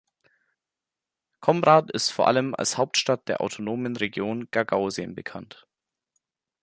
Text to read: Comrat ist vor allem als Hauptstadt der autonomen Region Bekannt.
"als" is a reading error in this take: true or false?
false